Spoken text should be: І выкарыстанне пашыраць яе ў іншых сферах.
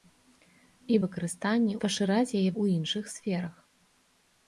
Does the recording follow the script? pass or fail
pass